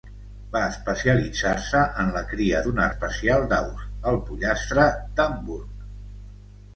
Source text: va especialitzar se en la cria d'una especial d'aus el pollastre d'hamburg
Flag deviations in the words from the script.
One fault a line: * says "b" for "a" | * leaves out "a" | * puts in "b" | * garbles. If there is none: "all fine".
all fine